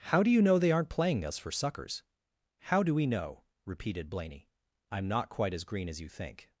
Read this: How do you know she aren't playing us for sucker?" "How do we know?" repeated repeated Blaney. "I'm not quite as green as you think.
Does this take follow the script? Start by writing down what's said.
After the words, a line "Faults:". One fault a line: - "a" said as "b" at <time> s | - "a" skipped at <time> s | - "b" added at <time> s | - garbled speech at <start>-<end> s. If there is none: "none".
How do you know they aren't playing us for suckers?" "How do we know?" repeated Blaney. "I'm not quite as green as you think.
Faults:
- "she" said as "they" at 0.6 s
- "sucker" said as "suckers" at 1.5 s
- "repeated" skipped at 4.1 s